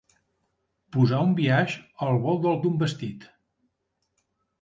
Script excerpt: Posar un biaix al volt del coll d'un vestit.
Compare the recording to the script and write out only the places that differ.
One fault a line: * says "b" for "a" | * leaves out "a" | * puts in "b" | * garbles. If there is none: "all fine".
* leaves out "coll"